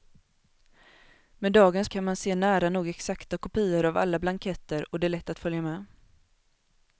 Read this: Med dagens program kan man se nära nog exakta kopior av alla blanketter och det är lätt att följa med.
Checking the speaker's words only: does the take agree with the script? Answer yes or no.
no